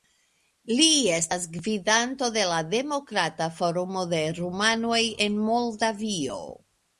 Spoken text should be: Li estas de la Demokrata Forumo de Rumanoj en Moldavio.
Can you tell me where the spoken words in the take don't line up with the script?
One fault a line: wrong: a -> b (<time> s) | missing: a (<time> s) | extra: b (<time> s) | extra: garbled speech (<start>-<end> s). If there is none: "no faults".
extra: gvidanto (1.6 s)